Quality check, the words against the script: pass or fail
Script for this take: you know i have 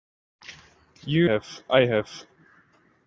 fail